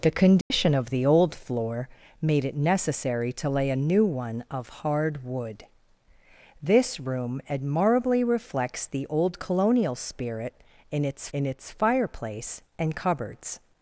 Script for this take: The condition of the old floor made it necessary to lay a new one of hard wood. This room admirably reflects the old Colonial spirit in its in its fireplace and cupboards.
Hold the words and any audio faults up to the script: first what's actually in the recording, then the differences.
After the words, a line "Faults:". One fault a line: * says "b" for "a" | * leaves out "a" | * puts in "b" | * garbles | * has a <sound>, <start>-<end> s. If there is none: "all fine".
The condition of the old floor made it necessary to lay a new one of hard wood. This room admirably reflects the old Colonial spirit in its in its fireplace and cupboards.
Faults:
* has a dropout, 0.4-0.5 s